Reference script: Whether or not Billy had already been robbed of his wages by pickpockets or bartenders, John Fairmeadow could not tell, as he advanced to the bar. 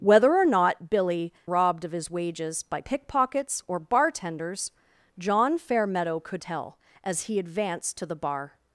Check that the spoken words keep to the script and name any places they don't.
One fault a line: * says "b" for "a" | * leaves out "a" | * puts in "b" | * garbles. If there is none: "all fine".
* leaves out "had already been"
* leaves out "not"